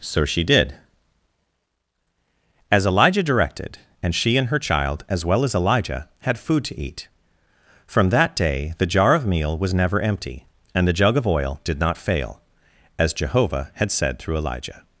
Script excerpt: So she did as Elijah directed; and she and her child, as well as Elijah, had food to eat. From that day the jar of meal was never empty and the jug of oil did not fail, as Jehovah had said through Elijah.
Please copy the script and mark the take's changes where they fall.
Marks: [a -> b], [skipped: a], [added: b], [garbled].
So she did as Elijah directed; and she and her child, as well as Elijah, had food to eat. From that day the jar of meal was never empty and the jug of oil did not fail, as Jehovah had said through Elijah.